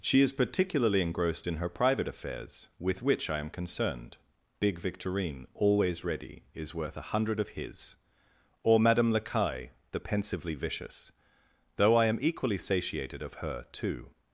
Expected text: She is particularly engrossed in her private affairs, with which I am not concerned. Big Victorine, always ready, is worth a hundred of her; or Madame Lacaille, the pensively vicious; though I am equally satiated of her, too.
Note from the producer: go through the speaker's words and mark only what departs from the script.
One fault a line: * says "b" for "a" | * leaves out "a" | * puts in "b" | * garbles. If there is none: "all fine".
* leaves out "not"
* says "his" for "her"